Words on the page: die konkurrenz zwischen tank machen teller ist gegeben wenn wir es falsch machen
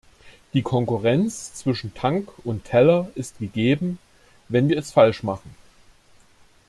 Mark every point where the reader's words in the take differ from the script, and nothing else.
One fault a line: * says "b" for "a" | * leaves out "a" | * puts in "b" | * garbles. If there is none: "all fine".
* says "und" for "machen"